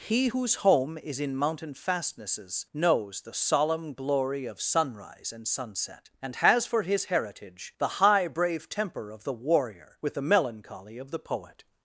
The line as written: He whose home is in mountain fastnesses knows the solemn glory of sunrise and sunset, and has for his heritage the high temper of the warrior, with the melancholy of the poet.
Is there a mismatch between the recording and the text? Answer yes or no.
yes